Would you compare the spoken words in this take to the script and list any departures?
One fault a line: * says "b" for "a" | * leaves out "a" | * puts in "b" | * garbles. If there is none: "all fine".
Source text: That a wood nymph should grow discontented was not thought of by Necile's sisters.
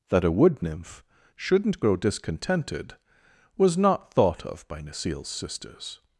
* says "shouldn't" for "should"